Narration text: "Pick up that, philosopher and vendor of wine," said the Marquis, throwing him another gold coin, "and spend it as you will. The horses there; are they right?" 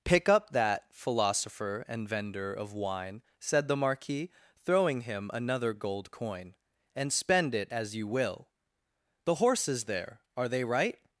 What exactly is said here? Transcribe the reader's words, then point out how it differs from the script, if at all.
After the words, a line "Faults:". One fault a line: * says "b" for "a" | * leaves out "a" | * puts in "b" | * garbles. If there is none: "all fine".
"Pick up that, philosopher and vendor of wine," said the Marquis, throwing him another gold coin, "and spend it as you will. The horses there; are they right?"
Faults:
all fine